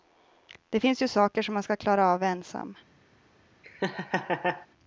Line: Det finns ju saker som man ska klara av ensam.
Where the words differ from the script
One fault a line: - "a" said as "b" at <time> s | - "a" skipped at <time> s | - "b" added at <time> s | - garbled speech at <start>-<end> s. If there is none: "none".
none